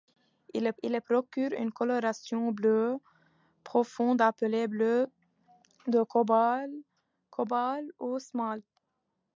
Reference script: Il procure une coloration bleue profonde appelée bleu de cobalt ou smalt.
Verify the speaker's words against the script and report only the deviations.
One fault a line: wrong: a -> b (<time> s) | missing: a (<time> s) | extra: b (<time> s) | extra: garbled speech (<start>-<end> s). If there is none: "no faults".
extra: il (0.8 s)